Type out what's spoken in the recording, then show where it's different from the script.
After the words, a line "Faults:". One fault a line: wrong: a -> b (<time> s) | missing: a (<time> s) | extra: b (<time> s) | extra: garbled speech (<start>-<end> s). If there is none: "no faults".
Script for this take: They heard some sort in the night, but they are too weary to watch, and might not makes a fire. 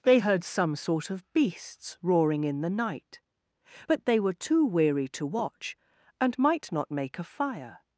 They heard some sort of beasts roaring in the night, but they were too weary to watch, and might not make a fire.
Faults:
extra: of beasts roaring (1.1 s)
wrong: are -> were (4.2 s)
wrong: makes -> make (6.9 s)